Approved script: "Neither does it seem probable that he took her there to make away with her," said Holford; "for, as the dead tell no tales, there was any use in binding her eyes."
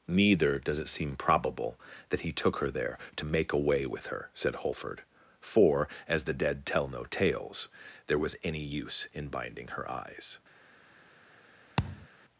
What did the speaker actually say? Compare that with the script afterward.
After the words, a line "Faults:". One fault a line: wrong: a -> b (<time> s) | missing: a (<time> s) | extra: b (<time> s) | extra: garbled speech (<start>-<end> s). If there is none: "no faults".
"Neither does it seem probable that he took her there to make away with her," said Holford; "for, as the dead tell no tales, there was any use in binding her eyes."
Faults:
no faults